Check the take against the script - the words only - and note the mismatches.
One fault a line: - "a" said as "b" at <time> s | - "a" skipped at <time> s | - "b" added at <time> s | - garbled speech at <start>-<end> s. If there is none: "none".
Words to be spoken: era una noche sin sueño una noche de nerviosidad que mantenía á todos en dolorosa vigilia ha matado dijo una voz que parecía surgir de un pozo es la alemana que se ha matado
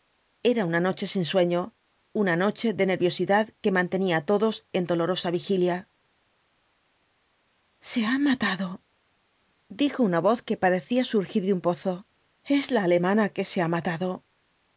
- "se" added at 7.9 s